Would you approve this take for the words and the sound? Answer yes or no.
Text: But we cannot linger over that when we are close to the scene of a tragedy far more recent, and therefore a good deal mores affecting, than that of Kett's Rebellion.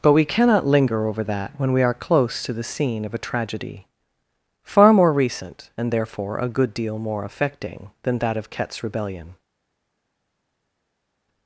no